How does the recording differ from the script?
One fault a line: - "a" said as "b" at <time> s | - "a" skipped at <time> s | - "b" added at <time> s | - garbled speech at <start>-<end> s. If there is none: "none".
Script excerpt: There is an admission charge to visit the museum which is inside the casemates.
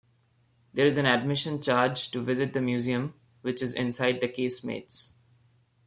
none